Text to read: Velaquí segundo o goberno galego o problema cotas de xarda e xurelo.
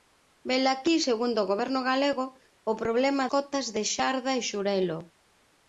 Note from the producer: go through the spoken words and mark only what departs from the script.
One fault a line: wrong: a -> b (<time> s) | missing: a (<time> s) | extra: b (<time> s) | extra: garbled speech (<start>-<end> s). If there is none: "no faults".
no faults